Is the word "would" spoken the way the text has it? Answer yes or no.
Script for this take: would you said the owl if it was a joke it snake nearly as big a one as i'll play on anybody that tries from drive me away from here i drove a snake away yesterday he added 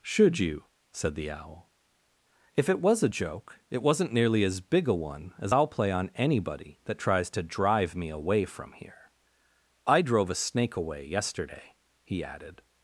no